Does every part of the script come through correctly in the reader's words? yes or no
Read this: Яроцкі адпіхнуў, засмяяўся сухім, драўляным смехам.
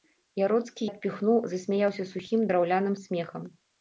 yes